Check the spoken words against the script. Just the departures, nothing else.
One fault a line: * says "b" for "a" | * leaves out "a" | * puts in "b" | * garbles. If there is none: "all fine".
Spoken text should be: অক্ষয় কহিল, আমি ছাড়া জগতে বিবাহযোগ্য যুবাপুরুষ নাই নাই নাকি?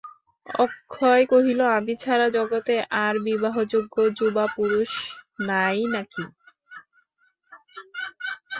* puts in "আর"
* leaves out "নাই"